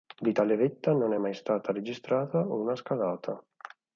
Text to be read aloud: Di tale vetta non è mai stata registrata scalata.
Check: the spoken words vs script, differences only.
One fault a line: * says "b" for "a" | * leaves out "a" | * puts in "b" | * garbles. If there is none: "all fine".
* puts in "una"